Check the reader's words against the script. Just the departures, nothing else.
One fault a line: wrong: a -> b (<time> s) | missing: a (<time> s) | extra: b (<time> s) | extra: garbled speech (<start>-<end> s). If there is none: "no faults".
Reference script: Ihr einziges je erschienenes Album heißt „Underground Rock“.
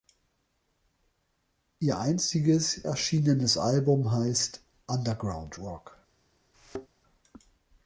missing: je (2.9 s)